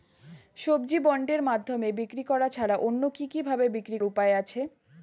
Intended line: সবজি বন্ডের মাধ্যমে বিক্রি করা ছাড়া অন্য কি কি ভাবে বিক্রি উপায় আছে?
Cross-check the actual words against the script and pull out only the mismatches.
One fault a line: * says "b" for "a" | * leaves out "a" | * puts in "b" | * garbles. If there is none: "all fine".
all fine